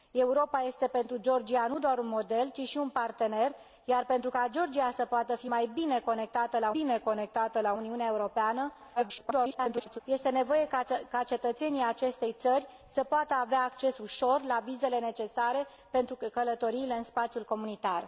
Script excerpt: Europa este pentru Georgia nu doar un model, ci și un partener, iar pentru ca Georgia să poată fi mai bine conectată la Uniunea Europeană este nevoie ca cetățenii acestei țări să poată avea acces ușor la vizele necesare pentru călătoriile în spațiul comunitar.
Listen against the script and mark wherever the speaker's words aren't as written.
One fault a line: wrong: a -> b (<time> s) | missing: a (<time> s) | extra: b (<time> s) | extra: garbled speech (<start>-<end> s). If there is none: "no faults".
extra: bine conectată la (6.7 s)
extra: garbled speech (9.0-10.0 s)